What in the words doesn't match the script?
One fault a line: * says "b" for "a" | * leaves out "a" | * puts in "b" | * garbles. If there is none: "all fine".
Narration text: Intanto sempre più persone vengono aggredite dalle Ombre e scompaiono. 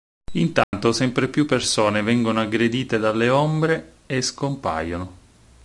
all fine